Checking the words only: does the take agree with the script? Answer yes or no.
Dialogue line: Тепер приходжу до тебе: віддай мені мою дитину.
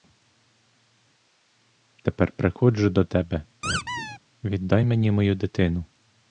yes